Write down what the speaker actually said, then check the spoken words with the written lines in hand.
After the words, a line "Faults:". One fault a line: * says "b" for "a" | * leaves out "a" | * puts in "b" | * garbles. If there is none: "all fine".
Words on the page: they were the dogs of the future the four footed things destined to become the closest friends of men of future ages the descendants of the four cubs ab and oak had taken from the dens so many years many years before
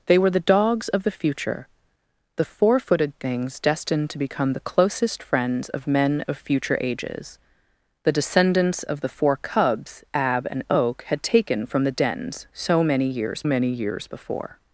they were the dogs of the future the four footed things destined to become the closest friends of men of future ages the descendants of the four cubs ab and oak had taken from the dens so many years many years before
Faults:
all fine